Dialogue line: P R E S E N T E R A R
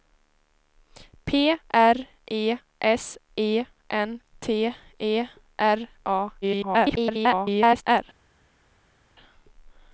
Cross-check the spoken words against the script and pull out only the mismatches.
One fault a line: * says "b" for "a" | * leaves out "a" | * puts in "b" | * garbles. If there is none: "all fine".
* garbles